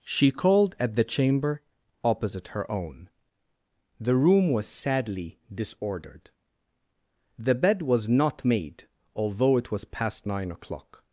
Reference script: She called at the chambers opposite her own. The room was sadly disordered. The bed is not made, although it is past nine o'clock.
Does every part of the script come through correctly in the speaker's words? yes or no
no